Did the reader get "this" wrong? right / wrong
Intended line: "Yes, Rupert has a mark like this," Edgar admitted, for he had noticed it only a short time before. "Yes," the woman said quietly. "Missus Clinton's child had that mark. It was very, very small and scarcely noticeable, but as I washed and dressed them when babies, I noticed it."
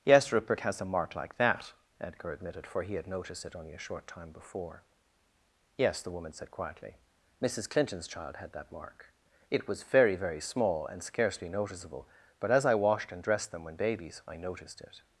wrong